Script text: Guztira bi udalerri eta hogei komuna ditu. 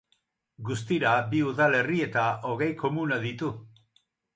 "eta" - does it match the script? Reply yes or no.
yes